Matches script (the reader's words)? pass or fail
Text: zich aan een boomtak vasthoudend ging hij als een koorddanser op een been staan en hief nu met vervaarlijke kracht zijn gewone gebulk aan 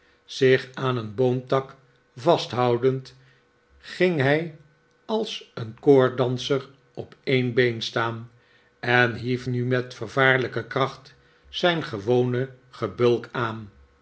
pass